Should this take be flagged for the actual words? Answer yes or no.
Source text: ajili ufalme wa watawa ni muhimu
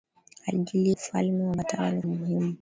no